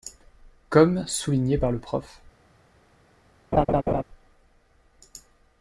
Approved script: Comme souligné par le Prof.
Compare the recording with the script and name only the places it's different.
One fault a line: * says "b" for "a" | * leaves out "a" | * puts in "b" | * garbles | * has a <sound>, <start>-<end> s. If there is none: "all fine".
* has a laugh, 3.5-4.0 s